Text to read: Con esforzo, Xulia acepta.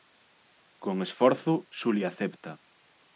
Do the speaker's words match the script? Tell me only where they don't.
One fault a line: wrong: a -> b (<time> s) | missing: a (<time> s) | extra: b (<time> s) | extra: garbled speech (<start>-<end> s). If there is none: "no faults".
no faults